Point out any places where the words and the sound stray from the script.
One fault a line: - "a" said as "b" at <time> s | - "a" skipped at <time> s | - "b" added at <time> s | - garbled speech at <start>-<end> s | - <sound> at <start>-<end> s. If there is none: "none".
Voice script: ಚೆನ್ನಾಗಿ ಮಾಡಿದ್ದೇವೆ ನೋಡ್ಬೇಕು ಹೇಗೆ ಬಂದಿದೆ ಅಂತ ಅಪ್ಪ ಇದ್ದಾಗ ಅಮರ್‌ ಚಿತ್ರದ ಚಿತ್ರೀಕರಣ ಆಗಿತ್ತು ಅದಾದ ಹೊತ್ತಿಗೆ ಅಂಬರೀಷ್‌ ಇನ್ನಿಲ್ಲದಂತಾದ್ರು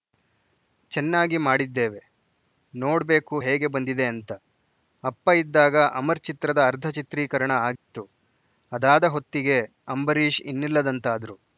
- "ಅರ್ಧ" added at 6.7 s
- dropout at 7.8-7.9 s